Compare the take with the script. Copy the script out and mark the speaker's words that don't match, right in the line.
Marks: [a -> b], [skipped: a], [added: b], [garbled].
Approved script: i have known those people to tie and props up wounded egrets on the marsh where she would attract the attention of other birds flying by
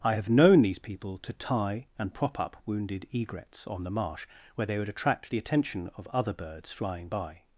i have known [those -> these] people to tie and [props -> prop] up wounded egrets on the marsh where [she -> they] would attract the attention of other birds flying by